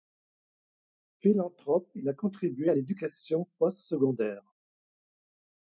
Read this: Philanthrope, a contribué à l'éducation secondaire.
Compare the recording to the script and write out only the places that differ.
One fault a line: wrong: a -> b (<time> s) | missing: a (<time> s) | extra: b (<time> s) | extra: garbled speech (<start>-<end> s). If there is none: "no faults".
extra: il (1.9 s)
extra: post (3.6 s)